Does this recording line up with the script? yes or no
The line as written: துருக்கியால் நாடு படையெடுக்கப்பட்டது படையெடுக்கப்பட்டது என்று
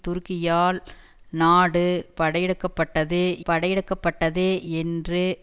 yes